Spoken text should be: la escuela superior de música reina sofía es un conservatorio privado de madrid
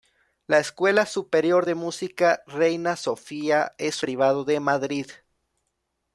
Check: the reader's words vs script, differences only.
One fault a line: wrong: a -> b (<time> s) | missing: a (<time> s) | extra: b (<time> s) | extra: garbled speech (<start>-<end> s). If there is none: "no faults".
missing: un conservatorio (4.0 s)